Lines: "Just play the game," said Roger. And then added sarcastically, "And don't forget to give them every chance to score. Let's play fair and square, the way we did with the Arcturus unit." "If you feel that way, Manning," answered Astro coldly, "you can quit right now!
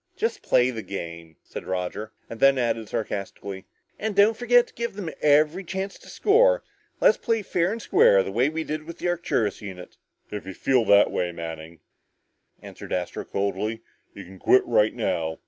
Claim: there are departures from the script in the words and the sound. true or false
false